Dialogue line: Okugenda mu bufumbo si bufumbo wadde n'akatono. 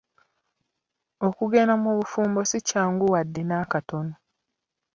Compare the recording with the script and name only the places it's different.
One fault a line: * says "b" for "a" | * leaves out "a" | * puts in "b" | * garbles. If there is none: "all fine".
* says "kyangu" for "bufumbo"